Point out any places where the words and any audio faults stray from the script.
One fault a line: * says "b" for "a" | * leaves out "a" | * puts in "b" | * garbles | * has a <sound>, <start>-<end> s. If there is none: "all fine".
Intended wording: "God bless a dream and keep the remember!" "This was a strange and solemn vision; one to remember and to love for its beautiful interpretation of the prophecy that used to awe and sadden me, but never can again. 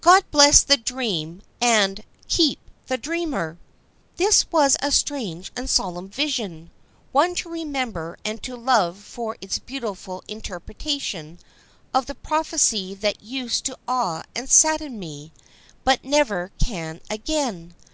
* says "the" for "a"
* says "dreamer" for "remember"